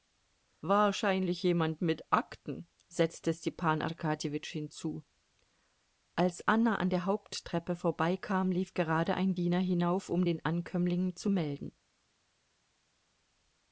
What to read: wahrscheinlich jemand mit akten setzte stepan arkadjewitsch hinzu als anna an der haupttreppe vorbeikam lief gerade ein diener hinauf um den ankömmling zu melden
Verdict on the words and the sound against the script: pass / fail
pass